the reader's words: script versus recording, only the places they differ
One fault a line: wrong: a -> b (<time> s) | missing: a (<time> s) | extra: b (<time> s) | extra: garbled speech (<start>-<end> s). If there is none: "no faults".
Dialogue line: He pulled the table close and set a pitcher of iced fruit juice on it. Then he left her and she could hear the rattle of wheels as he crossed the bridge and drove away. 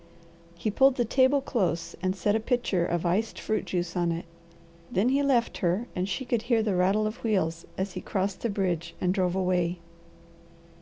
no faults